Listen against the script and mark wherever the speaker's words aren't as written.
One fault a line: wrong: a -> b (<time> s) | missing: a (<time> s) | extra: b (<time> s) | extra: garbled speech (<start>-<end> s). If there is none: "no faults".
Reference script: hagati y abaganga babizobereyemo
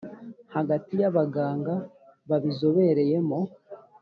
no faults